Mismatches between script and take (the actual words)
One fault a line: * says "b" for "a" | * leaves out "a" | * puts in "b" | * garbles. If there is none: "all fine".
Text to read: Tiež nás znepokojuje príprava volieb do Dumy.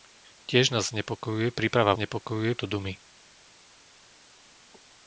* says "znepokojuje" for "volieb"